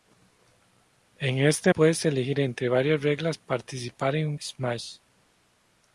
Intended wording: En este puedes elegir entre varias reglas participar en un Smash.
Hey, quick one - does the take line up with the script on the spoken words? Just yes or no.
yes